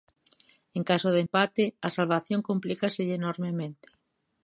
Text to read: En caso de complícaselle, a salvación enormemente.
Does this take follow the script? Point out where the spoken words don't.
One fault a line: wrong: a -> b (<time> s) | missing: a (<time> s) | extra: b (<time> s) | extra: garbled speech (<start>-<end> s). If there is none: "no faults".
wrong: complícaselle -> empate (1.2 s)
extra: complícaselle (2.5 s)